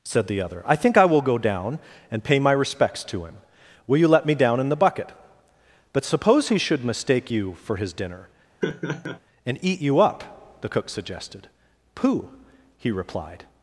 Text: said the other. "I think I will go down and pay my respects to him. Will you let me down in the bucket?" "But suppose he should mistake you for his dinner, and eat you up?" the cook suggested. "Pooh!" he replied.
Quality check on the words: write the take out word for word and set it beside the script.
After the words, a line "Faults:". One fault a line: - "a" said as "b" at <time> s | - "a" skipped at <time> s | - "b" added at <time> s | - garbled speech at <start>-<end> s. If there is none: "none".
said the other. "I think I will go down and pay my respects to him. Will you let me down in the bucket?" "But suppose he should mistake you for his dinner, and eat you up?" the cook suggested. "Pooh!" he replied.
Faults:
none